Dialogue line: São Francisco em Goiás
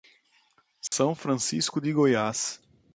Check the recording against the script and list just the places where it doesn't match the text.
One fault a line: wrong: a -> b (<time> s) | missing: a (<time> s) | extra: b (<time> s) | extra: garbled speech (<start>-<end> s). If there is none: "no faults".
wrong: em -> de (1.8 s)